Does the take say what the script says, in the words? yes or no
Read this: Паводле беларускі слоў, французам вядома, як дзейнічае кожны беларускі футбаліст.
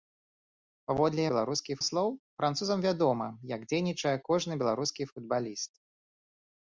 yes